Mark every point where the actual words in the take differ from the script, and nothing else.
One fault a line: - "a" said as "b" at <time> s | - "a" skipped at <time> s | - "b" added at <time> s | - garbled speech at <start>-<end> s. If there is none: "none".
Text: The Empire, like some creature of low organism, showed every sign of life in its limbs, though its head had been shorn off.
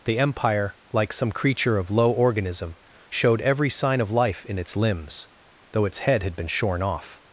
none